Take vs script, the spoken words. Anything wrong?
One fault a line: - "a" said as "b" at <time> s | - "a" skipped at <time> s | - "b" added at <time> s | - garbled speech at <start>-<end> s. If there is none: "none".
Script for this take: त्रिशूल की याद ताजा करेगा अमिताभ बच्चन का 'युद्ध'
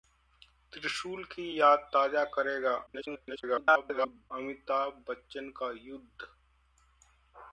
- garbled speech at 2.9-4.3 s